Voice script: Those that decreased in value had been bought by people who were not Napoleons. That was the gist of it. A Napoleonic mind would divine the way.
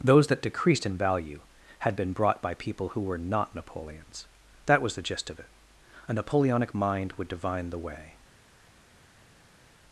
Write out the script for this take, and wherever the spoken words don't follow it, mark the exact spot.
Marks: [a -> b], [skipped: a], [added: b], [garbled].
Those that decreased in value had been [bought -> brought] by people who were not Napoleons. That was the gist of it. A Napoleonic mind would divine the way.